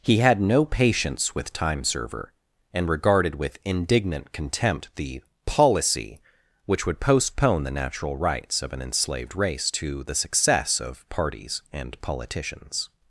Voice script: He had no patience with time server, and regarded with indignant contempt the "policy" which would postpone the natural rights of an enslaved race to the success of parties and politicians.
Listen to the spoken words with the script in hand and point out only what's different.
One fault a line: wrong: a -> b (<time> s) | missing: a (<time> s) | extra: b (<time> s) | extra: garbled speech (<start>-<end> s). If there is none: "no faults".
no faults